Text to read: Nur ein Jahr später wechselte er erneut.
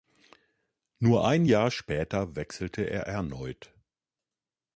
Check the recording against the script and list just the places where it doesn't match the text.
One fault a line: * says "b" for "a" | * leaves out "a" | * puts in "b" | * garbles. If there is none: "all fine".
all fine